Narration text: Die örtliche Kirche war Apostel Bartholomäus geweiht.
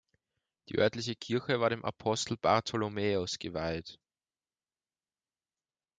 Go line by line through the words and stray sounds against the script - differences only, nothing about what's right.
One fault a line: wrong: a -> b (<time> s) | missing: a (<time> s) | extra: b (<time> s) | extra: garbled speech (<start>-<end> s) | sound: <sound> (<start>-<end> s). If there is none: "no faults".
extra: dem (1.7 s)